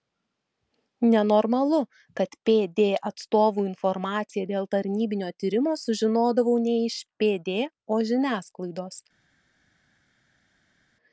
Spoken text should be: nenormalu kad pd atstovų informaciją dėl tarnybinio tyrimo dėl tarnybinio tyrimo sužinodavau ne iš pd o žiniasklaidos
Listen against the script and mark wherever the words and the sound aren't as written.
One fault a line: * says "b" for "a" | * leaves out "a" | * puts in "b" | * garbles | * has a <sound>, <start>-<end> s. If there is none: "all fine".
* leaves out "dėl tarnybinio tyrimo"